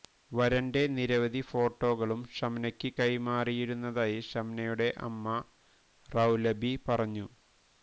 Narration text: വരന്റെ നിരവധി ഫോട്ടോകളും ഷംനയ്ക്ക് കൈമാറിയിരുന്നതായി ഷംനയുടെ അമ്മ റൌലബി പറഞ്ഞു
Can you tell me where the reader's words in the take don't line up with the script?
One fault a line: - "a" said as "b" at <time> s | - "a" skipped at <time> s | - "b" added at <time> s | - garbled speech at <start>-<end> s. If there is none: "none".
none